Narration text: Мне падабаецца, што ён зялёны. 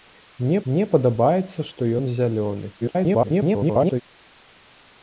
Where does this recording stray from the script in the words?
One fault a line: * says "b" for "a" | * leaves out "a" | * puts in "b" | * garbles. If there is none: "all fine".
* puts in "мне"
* garbles